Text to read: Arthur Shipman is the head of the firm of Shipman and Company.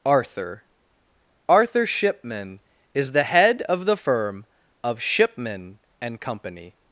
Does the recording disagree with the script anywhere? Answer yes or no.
yes